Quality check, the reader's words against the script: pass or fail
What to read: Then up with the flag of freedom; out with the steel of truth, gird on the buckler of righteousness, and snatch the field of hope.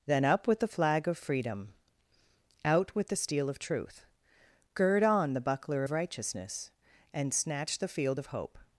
pass